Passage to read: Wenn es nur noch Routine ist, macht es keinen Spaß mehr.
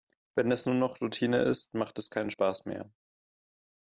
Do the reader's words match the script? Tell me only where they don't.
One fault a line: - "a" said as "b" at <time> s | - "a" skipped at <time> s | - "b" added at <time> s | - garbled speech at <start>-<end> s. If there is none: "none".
none